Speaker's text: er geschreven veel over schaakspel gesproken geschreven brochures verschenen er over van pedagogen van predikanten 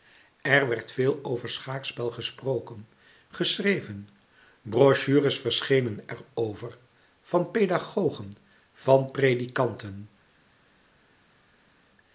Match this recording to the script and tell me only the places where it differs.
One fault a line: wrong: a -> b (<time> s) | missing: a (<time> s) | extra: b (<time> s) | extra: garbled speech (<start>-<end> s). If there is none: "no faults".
wrong: geschreven -> werd (0.7 s)